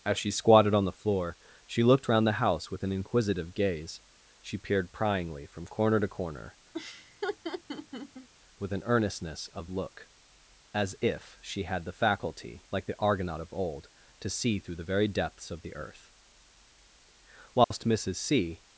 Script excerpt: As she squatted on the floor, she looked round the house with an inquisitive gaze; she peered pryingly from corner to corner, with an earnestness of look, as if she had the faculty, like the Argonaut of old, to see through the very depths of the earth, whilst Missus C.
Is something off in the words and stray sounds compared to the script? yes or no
yes